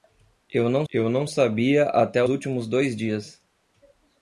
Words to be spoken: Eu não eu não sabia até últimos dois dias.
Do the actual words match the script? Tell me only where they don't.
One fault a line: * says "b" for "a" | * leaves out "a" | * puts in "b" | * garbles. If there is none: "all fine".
all fine